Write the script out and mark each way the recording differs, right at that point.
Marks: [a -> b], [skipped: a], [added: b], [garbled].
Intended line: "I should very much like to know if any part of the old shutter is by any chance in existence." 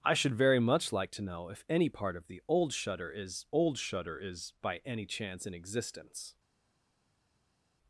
"I should very much like to know if any part of the old shutter is [added: old shutter is] by any chance in existence."